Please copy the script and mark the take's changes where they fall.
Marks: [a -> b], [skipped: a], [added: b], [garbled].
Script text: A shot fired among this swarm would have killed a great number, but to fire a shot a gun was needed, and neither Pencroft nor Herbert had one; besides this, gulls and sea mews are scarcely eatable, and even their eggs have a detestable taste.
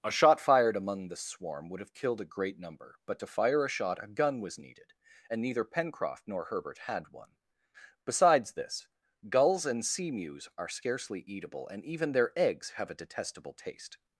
A shot fired among [this -> the] swarm would have killed a great number, but to fire a shot a gun was needed, and neither Pencroft nor Herbert had one; besides this, gulls and sea mews are scarcely eatable, and even their eggs have a detestable taste.